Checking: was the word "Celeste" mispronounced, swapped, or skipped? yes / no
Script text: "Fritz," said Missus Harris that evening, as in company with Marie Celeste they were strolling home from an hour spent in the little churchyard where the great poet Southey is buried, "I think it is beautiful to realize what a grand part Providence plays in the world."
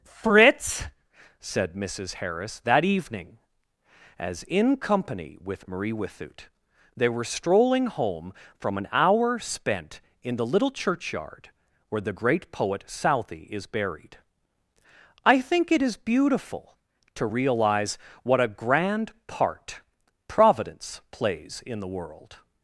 yes